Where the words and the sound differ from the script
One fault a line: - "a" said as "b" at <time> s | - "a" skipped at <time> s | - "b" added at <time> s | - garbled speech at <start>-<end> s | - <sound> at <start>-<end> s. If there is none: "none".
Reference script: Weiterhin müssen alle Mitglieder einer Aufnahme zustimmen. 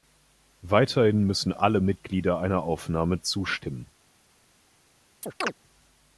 - chirp at 5.2-5.5 s